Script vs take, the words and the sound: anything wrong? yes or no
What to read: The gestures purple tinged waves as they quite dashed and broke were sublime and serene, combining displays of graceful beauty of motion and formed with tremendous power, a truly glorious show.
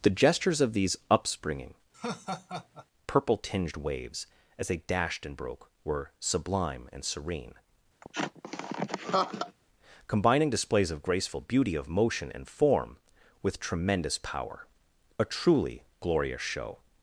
yes